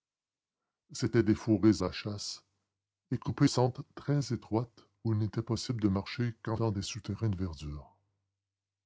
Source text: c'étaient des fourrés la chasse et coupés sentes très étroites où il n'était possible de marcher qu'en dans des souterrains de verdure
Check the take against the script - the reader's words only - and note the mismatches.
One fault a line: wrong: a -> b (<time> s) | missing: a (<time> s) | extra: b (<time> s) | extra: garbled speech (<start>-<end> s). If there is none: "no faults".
no faults